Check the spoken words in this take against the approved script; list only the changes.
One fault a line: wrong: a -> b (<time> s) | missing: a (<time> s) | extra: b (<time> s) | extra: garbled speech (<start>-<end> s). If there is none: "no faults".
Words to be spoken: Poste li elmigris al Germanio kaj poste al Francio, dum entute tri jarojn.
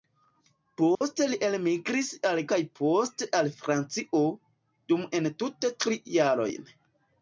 missing: Germanio (2.4 s)